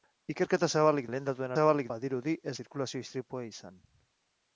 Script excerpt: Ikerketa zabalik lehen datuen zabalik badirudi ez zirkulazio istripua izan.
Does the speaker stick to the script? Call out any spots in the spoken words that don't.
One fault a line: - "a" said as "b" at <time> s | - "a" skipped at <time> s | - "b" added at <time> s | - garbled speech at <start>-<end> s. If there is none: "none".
none